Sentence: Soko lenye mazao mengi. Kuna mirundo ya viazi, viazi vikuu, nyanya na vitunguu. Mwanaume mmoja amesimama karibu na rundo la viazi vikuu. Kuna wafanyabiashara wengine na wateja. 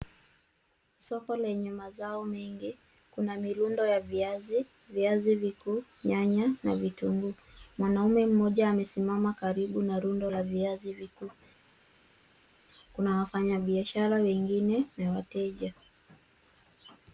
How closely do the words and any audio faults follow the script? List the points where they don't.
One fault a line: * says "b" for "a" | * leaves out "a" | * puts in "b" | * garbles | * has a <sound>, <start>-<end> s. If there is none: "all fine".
all fine